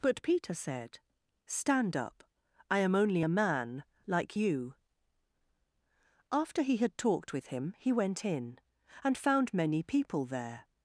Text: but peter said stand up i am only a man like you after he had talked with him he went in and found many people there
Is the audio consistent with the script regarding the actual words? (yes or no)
yes